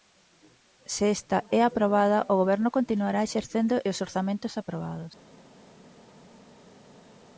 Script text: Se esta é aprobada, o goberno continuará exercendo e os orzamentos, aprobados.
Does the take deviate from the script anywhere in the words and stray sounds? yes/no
no